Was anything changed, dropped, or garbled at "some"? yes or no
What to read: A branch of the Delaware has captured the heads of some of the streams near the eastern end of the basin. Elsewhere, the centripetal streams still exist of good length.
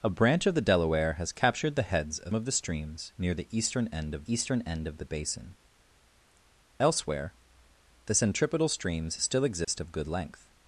yes